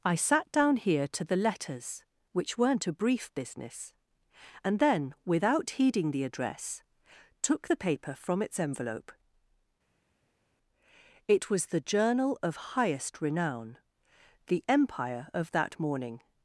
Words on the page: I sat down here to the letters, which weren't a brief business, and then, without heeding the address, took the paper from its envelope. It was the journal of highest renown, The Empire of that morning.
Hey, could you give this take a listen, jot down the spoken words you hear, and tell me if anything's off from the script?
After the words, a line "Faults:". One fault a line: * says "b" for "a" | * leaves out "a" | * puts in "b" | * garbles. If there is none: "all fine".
I sat down here to the letters, which weren't a brief business, and then, without heeding the address, took the paper from its envelope. It was the journal of highest renown, The Empire of that morning.
Faults:
all fine